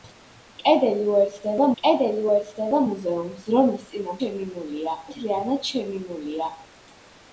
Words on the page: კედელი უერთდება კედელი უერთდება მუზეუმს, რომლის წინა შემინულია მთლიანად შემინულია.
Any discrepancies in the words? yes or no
no